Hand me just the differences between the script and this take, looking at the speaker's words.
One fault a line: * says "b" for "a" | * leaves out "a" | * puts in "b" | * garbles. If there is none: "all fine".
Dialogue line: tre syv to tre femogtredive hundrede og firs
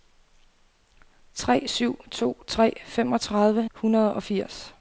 all fine